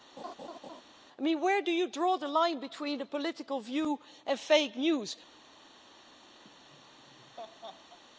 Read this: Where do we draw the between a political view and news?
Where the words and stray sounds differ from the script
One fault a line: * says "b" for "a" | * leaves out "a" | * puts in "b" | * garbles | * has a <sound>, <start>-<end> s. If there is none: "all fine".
* has a laugh, 0.2-0.8 s
* says "you" for "we"
* puts in "line"
* puts in "fake"
* has a laugh, 6.4-8.0 s